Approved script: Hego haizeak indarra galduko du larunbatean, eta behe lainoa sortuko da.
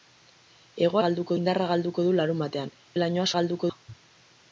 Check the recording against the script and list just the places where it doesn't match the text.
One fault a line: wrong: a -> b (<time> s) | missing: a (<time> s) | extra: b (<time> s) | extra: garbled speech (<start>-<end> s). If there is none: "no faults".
wrong: haizeak -> galduko (1.1 s)
missing: eta (2.7 s)
wrong: sortuko -> galduko (3.4 s)